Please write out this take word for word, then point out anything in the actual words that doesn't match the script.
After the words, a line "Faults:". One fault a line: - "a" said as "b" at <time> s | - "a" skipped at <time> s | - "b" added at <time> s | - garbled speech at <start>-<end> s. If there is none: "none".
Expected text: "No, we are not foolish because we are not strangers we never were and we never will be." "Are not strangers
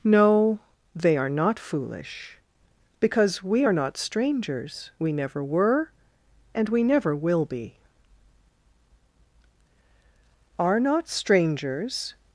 "No, they are not foolish because we are not strangers we never were and we never will be." "Are not strangers
Faults:
- "we" said as "they" at 0.9 s